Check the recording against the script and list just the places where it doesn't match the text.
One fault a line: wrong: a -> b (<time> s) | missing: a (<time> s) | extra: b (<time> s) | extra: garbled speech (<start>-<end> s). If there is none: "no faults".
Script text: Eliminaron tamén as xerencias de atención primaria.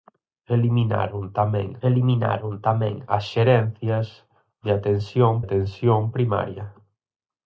extra: eliminaron tamén (1.9 s)
extra: atención (5.4 s)